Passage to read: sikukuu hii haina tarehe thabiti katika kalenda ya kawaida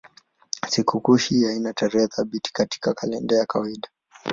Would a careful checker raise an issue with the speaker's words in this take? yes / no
no